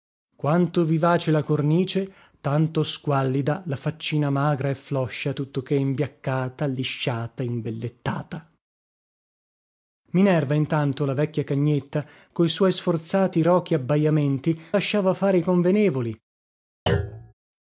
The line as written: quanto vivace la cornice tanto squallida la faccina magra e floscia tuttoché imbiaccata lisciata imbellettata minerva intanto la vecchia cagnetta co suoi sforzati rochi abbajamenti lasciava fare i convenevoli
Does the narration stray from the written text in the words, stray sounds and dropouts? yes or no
yes